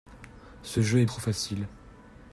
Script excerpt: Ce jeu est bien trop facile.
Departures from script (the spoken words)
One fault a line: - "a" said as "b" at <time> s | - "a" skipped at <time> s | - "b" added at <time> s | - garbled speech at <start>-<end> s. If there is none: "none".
- "bien" skipped at 1.1 s